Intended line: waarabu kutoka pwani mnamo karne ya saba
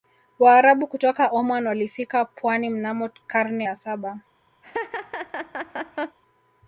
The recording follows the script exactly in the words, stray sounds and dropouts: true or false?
false